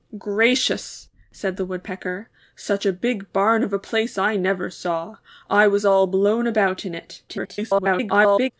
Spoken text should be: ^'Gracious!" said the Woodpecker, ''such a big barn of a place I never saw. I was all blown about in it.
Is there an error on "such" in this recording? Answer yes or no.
no